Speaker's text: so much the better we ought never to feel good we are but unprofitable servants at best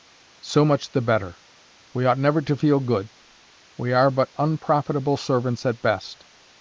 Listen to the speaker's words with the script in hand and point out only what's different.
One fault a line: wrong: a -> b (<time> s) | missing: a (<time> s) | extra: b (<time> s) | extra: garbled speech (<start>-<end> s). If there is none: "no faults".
no faults